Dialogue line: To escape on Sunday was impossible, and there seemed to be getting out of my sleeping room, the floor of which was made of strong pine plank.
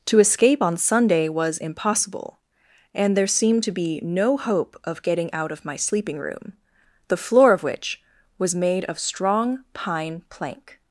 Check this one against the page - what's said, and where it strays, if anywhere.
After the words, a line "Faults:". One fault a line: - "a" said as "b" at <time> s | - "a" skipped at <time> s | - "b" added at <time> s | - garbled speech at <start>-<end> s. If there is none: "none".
To escape on Sunday was impossible, and there seemed to be no hope of getting out of my sleeping room, the floor of which was made of strong pine plank.
Faults:
- "no hope of" added at 4.0 s